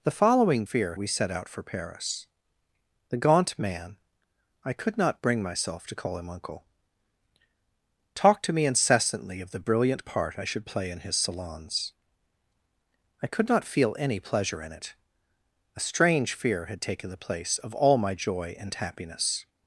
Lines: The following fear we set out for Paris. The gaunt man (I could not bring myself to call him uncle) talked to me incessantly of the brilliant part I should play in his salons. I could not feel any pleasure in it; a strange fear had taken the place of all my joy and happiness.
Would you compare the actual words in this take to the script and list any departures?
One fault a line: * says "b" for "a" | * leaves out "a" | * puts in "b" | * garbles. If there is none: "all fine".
all fine